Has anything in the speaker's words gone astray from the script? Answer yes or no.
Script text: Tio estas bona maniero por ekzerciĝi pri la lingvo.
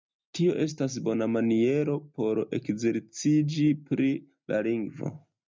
no